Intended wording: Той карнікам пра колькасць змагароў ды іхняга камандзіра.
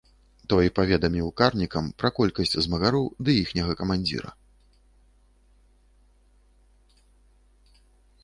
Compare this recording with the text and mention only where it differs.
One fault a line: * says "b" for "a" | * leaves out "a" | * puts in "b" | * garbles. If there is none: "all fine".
* puts in "паведаміў"